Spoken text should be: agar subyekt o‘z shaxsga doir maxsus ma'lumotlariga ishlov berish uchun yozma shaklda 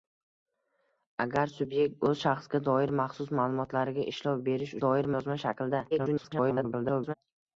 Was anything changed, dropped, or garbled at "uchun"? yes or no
yes